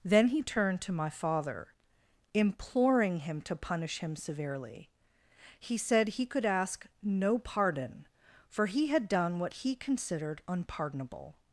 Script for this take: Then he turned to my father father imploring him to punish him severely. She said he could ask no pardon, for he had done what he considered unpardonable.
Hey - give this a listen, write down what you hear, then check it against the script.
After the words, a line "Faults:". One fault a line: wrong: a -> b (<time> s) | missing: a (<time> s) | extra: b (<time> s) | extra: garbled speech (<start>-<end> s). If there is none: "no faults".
Then he turned to my father imploring him to punish him severely. He said he could ask no pardon, for he had done what he considered unpardonable.
Faults:
missing: father (1.7 s)
wrong: She -> He (5.6 s)